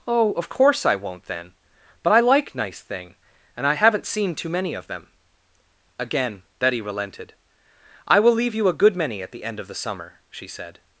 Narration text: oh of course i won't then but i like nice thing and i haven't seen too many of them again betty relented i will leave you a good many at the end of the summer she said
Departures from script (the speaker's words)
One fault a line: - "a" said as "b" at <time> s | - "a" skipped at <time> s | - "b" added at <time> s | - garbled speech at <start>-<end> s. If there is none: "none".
none